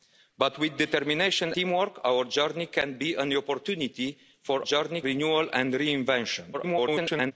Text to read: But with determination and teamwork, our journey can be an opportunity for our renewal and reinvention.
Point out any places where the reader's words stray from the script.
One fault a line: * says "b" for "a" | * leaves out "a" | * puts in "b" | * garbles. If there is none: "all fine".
* leaves out "and"
* says "journey" for "our"
* garbles